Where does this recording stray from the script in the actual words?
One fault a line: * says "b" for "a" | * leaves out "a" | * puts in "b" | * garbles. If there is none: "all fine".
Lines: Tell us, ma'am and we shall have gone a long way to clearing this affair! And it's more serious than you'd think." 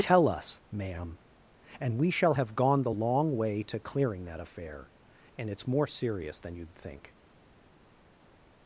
* says "the" for "a"
* says "that" for "this"